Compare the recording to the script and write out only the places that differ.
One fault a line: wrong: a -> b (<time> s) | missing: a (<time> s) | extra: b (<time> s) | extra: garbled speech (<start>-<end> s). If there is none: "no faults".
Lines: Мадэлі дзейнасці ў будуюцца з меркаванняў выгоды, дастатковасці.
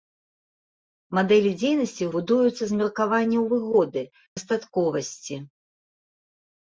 no faults